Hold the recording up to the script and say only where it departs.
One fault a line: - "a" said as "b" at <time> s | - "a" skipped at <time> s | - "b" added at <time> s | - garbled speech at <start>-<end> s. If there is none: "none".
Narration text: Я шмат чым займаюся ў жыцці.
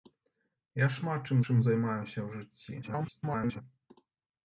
- "чым" added at 1.5 s
- garbled speech at 2.8-3.6 s